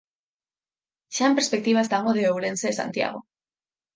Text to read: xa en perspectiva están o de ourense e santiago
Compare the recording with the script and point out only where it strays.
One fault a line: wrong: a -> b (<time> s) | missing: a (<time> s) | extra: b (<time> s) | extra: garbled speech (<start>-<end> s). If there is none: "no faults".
no faults